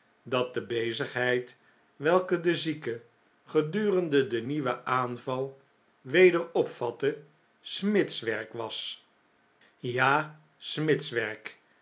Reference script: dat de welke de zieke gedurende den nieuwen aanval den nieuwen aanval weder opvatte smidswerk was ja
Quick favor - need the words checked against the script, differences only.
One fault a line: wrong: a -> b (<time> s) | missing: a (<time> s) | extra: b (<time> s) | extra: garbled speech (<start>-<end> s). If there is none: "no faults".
extra: bezigheid (0.7 s)
missing: den nieuwen aanval (5.6 s)